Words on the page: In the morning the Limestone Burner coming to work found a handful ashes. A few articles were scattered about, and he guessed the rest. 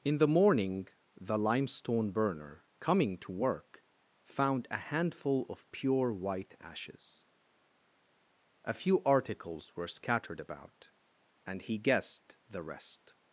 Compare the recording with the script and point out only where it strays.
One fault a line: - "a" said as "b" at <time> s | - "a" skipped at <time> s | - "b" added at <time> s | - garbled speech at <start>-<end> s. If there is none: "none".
- "of pure white" added at 5.5 s